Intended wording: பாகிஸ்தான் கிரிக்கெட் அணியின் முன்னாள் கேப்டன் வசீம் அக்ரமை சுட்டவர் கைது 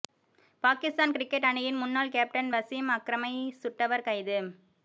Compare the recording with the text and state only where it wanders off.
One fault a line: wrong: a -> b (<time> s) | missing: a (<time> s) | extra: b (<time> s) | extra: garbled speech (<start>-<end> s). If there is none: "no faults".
no faults